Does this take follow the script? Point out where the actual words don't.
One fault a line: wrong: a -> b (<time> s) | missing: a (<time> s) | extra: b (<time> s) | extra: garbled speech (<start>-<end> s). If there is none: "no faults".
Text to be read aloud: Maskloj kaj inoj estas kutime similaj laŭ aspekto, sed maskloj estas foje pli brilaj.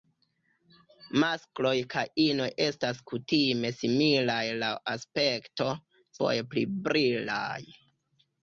missing: sed maskloj estas (5.7 s)